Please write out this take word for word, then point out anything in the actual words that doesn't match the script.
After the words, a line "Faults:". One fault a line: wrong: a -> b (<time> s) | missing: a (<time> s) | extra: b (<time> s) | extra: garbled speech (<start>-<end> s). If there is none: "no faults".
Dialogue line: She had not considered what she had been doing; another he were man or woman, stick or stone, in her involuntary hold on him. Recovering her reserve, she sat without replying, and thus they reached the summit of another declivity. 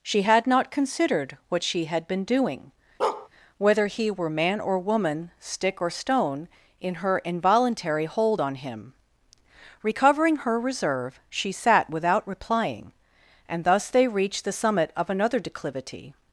She had not considered what she had been doing; whether he were man or woman, stick or stone, in her involuntary hold on him. Recovering her reserve, she sat without replying, and thus they reached the summit of another declivity.
Faults:
wrong: another -> whether (3.6 s)